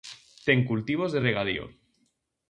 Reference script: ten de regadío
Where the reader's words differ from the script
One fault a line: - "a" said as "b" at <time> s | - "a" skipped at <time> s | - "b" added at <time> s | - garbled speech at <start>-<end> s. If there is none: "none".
- "cultivos" added at 0.7 s